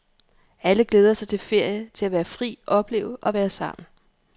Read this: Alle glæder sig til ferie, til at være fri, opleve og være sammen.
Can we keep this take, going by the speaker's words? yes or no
yes